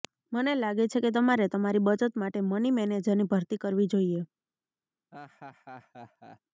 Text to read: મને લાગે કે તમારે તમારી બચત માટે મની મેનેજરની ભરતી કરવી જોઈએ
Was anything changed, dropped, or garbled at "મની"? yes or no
no